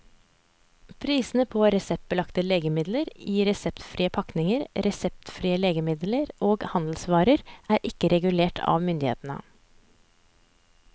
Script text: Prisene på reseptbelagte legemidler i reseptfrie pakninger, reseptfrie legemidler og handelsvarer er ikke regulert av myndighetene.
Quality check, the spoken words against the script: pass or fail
pass